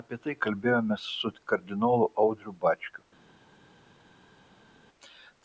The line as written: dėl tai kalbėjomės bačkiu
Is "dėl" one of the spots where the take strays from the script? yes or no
yes